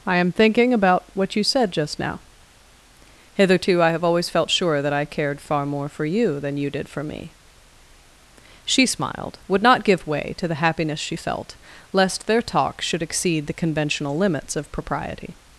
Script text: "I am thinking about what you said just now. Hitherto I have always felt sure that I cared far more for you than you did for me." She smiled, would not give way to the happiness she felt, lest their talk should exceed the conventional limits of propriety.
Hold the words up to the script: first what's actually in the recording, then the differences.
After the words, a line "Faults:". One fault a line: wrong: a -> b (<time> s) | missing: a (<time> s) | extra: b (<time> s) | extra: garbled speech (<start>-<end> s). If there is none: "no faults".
"I am thinking about what you said just now. Hitherto I have always felt sure that I cared far more for you than you did for me." She smiled, would not give way to the happiness she felt, lest their talk should exceed the conventional limits of propriety.
Faults:
no faults